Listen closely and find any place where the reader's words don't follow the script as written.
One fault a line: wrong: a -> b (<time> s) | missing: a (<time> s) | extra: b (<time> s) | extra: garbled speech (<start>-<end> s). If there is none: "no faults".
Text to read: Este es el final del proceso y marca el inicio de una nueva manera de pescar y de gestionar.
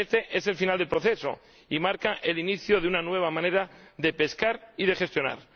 no faults